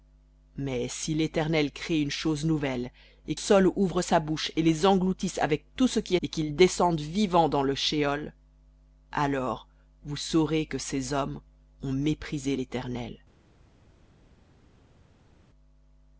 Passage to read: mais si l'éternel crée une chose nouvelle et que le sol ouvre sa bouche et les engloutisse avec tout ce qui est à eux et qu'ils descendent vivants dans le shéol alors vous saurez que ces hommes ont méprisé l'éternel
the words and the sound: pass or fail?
fail